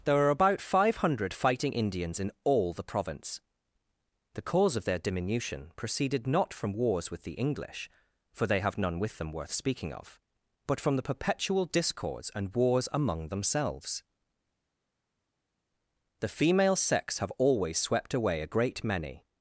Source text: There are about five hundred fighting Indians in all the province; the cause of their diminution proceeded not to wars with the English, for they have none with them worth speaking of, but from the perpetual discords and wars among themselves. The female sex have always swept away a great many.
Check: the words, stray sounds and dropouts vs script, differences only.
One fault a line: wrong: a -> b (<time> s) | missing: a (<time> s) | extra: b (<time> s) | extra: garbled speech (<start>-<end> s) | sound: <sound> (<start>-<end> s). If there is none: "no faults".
wrong: to -> from (6.5 s)